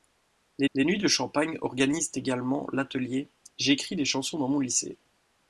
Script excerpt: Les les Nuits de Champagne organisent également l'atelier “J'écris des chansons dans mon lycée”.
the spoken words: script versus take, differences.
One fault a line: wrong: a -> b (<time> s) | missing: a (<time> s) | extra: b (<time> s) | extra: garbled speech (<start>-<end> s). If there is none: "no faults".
no faults